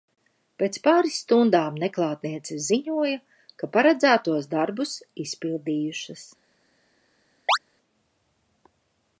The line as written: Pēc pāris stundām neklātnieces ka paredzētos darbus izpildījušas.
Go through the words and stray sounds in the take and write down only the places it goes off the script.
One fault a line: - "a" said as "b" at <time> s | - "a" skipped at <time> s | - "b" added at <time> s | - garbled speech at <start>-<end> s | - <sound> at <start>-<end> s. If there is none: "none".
- "ziņoja" added at 2.7 s
- chirp at 7.5-7.6 s